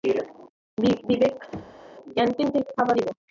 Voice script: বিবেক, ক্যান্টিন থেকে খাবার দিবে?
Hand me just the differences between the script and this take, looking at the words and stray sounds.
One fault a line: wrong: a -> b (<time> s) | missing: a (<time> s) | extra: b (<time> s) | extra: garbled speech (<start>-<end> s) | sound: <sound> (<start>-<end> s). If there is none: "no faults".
sound: thud (1.5-1.9 s)